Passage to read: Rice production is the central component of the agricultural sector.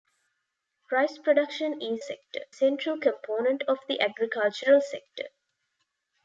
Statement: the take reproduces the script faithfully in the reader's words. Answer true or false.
false